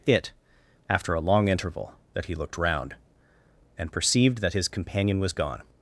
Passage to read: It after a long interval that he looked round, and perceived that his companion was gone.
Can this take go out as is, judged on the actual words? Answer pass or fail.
pass